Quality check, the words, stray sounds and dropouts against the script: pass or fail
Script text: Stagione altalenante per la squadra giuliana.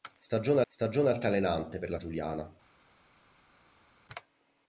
fail